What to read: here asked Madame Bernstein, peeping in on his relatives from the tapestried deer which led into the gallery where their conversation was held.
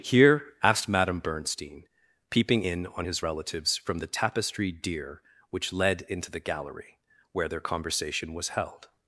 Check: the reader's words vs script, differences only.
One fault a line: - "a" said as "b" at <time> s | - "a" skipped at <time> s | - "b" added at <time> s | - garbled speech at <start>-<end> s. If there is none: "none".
none